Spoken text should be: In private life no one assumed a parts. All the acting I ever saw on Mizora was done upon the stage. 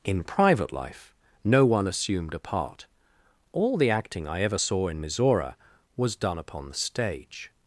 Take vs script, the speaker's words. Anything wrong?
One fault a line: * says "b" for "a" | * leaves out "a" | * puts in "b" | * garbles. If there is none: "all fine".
* says "part" for "parts"
* says "in" for "on"